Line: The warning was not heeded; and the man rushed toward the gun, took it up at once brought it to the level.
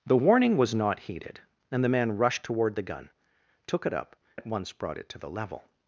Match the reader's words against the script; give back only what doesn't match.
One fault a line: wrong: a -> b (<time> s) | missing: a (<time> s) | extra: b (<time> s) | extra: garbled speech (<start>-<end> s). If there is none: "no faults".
no faults